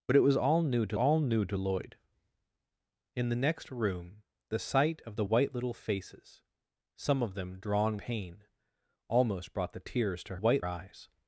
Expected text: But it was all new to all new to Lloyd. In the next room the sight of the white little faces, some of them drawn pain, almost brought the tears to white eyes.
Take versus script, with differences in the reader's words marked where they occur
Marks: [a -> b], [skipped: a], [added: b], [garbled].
But it was all new to all new to Lloyd. In the next room the sight of the white little faces, some of them drawn pain, almost brought the tears to white eyes.